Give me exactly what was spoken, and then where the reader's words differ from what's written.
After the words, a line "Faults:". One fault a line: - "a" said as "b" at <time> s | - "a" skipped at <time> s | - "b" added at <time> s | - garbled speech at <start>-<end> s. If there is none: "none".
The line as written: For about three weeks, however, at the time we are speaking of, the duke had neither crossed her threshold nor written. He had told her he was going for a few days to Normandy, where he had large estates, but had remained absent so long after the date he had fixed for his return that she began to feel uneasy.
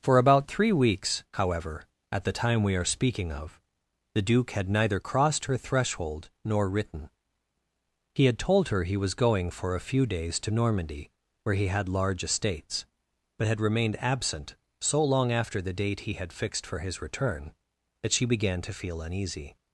For about three weeks, however, at the time we are speaking of, the duke had neither crossed her threshold nor written. He had told her he was going for a few days to Normandy, where he had large estates, but had remained absent so long after the date he had fixed for his return that she began to feel uneasy.
Faults:
none